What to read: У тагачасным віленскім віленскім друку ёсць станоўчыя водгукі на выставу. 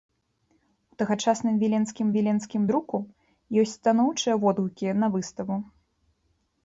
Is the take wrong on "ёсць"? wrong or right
right